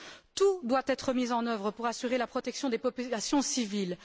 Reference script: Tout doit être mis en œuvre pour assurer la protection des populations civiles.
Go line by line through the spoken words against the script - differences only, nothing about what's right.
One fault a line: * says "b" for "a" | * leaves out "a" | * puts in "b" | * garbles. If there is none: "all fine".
all fine